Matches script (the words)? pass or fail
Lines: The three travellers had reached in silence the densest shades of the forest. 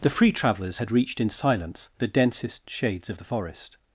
fail